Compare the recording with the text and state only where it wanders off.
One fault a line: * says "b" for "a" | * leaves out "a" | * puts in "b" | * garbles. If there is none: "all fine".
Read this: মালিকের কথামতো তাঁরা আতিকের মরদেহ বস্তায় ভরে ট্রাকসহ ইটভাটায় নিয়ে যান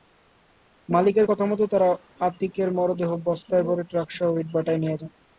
all fine